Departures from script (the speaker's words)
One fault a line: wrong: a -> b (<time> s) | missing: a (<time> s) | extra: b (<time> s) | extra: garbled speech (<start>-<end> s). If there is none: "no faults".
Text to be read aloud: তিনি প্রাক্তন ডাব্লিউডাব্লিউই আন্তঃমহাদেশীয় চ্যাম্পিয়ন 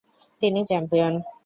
missing: প্রাক্তন ডাব্লিউডাব্লিউই আন্তঃমহাদেশীয় (0.6 s)